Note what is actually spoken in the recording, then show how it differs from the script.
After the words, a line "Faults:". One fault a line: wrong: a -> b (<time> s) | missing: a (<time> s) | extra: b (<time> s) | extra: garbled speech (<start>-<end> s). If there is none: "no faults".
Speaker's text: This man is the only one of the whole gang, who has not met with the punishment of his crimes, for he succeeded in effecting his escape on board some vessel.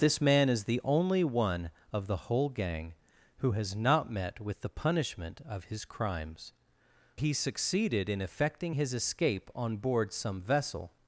This man is the only one of the whole gang, who has not met with the punishment of his crimes, he succeeded in effecting his escape on board some vessel.
Faults:
missing: for (6.5 s)